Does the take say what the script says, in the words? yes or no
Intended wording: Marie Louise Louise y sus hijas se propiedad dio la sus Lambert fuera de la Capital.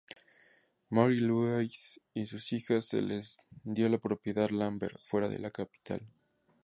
no